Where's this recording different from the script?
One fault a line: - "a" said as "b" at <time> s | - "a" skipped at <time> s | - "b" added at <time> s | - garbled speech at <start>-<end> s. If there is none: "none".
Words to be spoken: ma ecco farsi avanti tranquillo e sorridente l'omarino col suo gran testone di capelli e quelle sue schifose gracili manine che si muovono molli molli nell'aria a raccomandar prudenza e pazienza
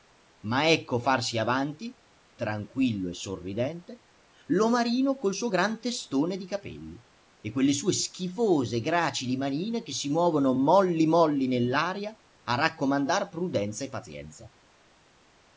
none